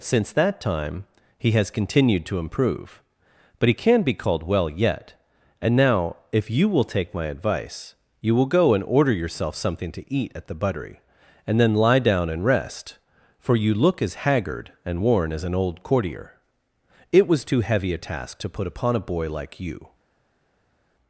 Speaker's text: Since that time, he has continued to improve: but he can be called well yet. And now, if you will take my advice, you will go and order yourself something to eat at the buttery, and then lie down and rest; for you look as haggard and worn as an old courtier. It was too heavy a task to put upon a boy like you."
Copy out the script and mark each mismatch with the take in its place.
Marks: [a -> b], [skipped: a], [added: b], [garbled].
Since that time, he has continued to improve: but he can be called well yet. And now, if you will take my advice, you will go and order yourself something to eat at the buttery, and then lie down and rest; for you look as haggard and worn as an old courtier. It was too heavy a task to put upon a boy like you."